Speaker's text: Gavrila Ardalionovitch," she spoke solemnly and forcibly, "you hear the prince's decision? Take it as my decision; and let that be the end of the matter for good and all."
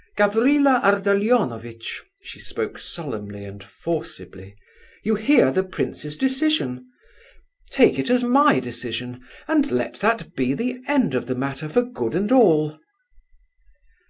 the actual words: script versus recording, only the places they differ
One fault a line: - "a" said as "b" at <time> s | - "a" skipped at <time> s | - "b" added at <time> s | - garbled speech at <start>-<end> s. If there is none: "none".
none